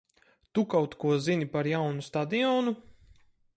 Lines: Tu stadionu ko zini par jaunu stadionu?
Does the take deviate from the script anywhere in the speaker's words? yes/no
yes